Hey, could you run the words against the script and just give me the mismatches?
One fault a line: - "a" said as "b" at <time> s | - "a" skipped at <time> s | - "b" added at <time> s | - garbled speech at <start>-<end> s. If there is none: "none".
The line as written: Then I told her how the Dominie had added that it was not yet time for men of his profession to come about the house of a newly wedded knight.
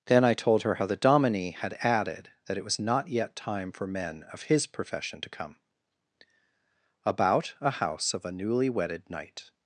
- "the" said as "a" at 7.6 s